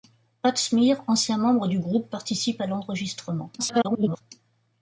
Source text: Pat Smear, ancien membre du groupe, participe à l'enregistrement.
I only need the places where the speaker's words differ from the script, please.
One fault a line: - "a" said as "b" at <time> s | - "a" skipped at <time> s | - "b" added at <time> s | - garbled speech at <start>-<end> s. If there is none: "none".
- garbled speech at 3.6-4.2 s